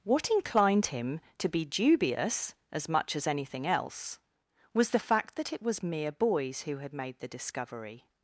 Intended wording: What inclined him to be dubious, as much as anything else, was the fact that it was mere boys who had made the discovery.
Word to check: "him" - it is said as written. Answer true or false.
true